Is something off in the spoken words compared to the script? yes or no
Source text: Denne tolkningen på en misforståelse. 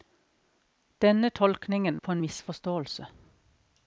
no